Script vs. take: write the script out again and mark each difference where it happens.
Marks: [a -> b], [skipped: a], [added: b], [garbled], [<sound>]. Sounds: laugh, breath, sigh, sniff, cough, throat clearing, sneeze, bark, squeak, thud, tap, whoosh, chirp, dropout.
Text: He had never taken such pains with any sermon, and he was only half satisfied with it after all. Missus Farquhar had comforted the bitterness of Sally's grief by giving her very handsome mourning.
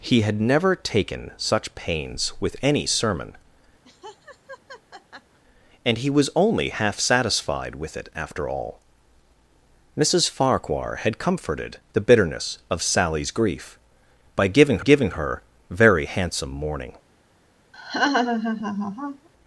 He had never taken such pains with any sermon, [laugh] and he was only half satisfied with it after all. Missus Farquhar had comforted the bitterness of Sally's grief by giving [added: giving] her very handsome mourning. [laugh]